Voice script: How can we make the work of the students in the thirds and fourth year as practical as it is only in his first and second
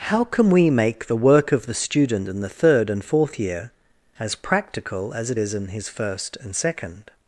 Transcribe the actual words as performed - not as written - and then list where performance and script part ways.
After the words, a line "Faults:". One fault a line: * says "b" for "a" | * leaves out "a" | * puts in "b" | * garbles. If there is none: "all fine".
How can we make the work of the student in the third and fourth year as practical as it is in his first and second
Faults:
* says "student" for "students"
* says "third" for "thirds"
* leaves out "only"